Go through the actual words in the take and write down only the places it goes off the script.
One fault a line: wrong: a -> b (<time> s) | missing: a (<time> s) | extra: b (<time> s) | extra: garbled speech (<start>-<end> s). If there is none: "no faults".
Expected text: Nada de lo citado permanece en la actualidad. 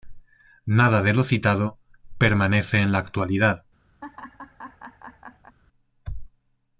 no faults